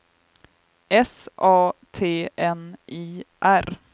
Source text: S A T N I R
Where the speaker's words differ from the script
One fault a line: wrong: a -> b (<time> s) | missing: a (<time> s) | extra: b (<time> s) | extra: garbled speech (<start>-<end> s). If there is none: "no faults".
no faults